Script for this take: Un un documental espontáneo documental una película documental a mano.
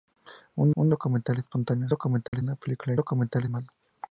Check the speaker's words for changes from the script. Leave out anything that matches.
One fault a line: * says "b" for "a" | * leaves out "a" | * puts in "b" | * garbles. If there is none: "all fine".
all fine